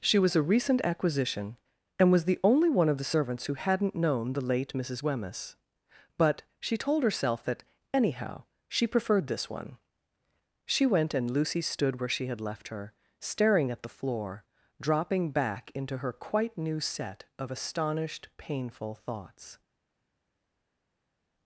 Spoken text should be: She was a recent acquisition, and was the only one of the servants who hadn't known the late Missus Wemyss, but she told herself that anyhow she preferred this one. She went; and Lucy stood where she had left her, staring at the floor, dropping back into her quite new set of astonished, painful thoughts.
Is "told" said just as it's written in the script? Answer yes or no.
yes